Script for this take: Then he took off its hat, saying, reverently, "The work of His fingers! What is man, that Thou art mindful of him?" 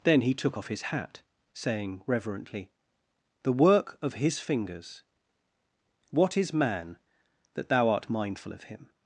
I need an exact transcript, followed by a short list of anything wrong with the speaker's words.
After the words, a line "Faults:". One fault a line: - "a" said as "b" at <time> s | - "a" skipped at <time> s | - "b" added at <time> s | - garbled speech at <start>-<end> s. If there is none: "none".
Then he took off his hat, saying, reverently, "The work of His fingers! What is man, that Thou art mindful of him?"
Faults:
- "its" said as "his" at 0.7 s